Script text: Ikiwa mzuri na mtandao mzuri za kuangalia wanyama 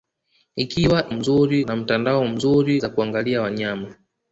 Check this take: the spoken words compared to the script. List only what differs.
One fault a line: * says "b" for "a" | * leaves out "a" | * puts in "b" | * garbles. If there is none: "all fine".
all fine